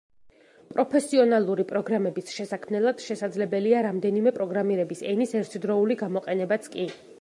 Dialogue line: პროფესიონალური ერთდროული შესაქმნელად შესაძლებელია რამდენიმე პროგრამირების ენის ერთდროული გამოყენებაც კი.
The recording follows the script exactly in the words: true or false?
false